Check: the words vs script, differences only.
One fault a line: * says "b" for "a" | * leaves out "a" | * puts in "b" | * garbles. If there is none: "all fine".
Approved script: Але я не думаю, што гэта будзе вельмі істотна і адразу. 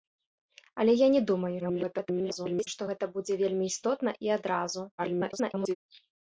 * garbles
* garbles